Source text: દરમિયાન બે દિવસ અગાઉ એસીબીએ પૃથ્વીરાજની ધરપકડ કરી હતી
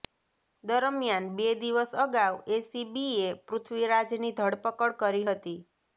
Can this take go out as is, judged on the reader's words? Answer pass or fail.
pass